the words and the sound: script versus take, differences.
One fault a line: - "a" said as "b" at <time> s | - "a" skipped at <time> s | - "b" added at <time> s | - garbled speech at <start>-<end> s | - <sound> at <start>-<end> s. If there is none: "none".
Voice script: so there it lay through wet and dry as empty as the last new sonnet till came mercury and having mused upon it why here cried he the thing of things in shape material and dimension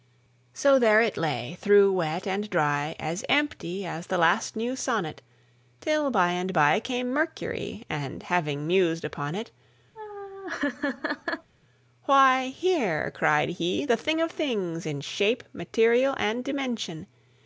- "by and by" added at 6.1 s
- laugh at 10.0-11.5 s